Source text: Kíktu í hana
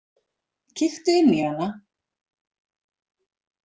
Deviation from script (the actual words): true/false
true